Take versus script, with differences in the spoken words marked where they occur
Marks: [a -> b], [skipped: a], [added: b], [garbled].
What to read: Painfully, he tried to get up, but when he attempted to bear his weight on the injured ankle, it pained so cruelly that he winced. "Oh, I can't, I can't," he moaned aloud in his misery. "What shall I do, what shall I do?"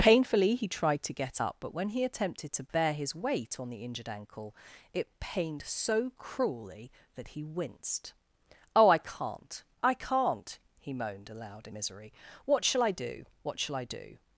Painfully, he tried to get up, but when he attempted to bear his weight on the injured ankle, it pained so cruelly that he winced. "Oh, I can't, I can't," he moaned aloud in [skipped: his] misery. "What shall I do, what shall I do?"